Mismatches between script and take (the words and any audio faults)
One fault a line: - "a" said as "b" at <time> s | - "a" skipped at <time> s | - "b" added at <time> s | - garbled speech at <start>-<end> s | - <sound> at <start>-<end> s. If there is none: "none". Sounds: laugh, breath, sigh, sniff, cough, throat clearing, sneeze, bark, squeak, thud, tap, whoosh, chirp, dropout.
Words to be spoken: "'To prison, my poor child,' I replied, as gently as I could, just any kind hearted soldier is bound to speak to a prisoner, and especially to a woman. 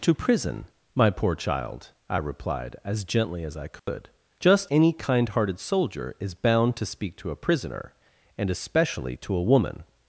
- dropout at 3.8-3.9 s